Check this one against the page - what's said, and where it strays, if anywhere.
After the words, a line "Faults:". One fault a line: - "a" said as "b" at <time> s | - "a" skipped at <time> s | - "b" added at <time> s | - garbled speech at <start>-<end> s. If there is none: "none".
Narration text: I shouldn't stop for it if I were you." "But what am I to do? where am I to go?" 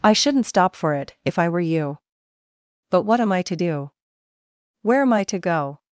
I shouldn't stop for it if I were you." "But what am I to do? where am I to go?"
Faults:
none